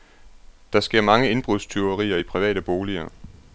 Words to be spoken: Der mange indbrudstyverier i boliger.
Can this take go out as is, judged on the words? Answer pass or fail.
fail